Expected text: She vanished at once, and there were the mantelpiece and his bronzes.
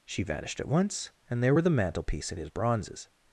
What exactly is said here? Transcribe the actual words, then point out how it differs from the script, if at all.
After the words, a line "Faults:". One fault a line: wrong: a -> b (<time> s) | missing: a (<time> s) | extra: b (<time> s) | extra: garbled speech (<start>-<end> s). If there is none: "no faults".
She vanished at once, and there were the mantelpiece and his bronzes.
Faults:
no faults